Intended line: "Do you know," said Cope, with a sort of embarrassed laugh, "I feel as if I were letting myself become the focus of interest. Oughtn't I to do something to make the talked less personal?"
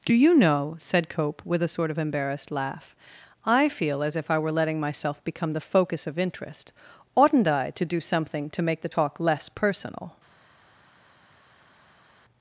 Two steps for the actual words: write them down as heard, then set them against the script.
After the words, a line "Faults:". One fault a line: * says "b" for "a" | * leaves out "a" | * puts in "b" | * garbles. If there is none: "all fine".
"Do you know," said Cope, with a sort of embarrassed laugh, "I feel as if I were letting myself become the focus of interest. Oughtn't I to do something to make the talk less personal?"
Faults:
* says "talk" for "talked"